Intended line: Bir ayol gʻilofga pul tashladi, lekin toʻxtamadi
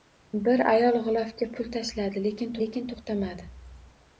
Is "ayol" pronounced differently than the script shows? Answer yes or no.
no